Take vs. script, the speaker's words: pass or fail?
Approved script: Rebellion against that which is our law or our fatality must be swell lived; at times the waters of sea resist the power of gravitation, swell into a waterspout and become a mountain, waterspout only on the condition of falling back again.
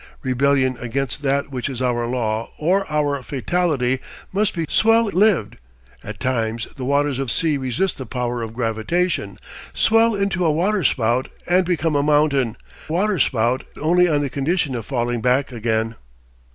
pass